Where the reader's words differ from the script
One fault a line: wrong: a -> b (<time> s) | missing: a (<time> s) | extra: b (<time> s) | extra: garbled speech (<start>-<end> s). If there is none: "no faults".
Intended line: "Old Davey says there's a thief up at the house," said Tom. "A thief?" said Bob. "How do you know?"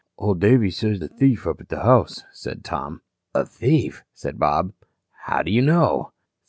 missing: there's (1.0 s)